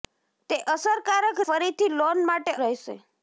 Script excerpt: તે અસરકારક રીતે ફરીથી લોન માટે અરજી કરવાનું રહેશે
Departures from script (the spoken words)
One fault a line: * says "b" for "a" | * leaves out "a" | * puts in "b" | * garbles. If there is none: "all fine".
* leaves out "રીતે"
* leaves out "અરજી કરવાનું"